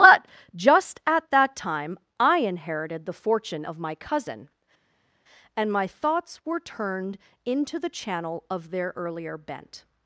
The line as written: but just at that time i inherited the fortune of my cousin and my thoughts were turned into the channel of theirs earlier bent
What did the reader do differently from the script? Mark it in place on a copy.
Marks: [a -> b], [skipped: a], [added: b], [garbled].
but just at that time i inherited the fortune of my cousin and my thoughts were turned into the channel of [theirs -> their] earlier bent